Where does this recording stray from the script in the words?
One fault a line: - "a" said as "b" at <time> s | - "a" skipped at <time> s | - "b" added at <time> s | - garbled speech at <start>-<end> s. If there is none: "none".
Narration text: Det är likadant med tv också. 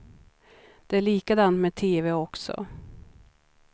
none